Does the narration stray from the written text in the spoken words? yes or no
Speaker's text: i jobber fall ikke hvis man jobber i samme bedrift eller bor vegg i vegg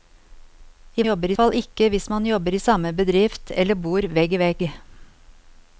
no